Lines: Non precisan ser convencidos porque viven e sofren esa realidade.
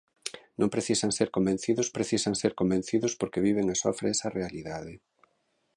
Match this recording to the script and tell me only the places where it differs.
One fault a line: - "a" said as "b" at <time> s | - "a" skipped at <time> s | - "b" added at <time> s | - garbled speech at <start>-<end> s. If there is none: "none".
- "precisan ser convencidos" added at 2.0 s